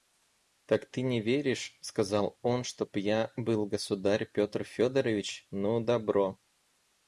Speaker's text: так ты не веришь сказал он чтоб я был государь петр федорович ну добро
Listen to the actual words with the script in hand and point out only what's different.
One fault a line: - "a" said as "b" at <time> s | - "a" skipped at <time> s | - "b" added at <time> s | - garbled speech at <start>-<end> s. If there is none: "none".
none